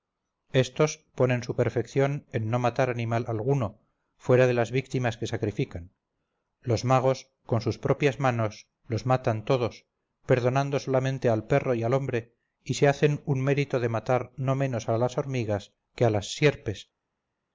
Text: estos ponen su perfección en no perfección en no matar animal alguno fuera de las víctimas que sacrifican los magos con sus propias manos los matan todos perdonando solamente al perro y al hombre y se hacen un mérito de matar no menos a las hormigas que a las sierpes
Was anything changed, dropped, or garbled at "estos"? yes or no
no